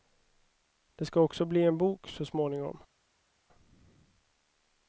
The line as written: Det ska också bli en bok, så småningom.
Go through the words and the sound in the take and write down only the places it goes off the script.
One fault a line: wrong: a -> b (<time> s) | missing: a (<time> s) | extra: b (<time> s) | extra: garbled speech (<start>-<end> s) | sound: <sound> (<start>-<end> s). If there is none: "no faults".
no faults